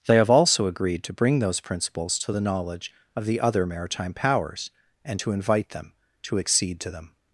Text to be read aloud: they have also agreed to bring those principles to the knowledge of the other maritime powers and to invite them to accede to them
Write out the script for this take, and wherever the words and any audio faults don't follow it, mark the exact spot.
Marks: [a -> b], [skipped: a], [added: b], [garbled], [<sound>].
they have also agreed to bring those principles to the knowledge of the other maritime powers and to invite them to accede to them